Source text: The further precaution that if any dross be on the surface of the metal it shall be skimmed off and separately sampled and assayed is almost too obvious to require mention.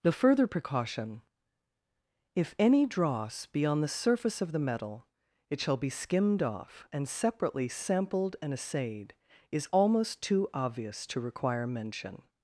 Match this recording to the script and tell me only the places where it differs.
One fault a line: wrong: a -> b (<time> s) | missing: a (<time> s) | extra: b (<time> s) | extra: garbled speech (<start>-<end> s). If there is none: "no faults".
missing: that (1.2 s)